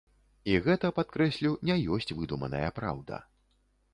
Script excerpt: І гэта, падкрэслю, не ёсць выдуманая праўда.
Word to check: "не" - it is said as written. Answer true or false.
true